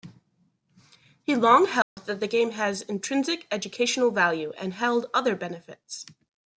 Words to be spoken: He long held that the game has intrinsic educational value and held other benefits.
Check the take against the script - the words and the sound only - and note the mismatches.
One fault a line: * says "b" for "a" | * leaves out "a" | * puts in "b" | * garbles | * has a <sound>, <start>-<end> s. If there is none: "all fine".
* has a dropout, 1.8-2.0 s